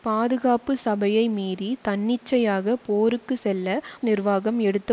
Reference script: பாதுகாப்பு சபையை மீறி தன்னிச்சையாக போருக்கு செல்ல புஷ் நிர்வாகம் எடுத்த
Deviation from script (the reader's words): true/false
true